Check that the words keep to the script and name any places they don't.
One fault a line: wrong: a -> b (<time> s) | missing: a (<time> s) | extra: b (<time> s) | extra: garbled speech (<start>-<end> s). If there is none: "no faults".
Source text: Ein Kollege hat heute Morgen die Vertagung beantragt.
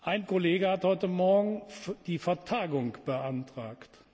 no faults